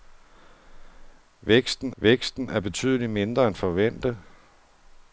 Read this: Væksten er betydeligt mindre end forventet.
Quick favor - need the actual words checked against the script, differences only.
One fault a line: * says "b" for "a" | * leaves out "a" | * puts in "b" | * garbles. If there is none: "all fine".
* puts in "væksten"